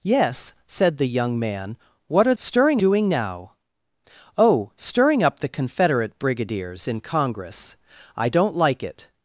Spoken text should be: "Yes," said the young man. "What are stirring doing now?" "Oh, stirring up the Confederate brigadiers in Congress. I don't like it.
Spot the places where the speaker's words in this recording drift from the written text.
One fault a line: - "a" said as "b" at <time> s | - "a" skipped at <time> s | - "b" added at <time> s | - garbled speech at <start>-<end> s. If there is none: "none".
none